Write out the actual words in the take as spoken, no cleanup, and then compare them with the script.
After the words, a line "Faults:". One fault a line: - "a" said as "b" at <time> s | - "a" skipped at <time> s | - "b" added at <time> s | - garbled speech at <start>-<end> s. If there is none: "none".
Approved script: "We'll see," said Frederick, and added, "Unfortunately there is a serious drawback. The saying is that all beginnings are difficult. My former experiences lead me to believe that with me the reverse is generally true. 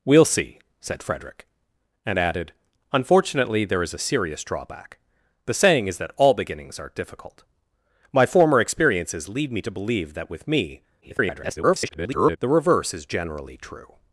"We'll see," said Frederick, and added, "Unfortunately there is a serious drawback. The saying is that all beginnings are difficult. My former experiences lead me to believe that with me [garbled] the reverse is generally true.
Faults:
- garbled speech at 11.0-12.4 s